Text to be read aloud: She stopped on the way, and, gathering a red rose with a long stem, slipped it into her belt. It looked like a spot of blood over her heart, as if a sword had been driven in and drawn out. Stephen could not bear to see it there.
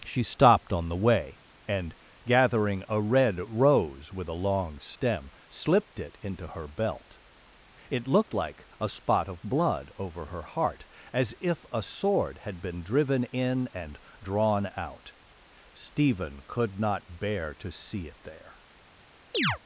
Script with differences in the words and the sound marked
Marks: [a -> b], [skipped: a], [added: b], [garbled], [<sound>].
She stopped on the way, and, gathering a red rose with a long stem, slipped it into her belt. It looked like a spot of blood over her heart, as if a sword had been driven in and drawn out. Stephen could not bear to see it there. [chirp]